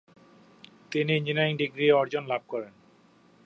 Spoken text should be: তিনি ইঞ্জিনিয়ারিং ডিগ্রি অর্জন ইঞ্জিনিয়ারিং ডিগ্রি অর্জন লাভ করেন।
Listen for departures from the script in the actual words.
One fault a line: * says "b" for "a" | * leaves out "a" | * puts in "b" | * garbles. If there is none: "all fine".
* leaves out "ইঞ্জিনিয়ারিং ডিগ্রি অর্জন"